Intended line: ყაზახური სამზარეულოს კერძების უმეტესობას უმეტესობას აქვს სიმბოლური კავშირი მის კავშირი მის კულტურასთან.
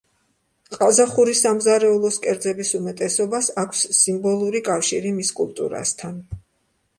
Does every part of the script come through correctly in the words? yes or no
no